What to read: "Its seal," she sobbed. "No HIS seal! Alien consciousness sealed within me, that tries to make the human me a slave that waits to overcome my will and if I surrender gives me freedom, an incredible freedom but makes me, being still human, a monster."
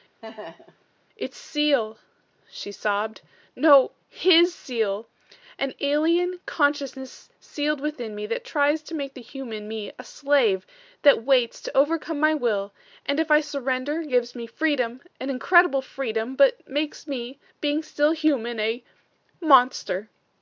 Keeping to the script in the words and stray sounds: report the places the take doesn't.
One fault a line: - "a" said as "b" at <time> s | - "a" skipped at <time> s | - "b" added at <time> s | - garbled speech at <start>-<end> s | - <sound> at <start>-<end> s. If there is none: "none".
- laugh at 0.2-0.8 s
- "An" added at 5.6 s